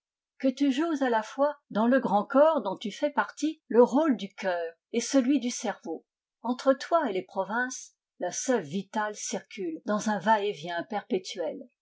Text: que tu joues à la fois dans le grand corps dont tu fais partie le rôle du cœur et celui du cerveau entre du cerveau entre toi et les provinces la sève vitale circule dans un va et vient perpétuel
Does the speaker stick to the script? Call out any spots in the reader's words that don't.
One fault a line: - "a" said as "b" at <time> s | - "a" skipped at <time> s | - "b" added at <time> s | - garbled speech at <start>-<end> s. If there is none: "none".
- "du cerveau entre" skipped at 6.7 s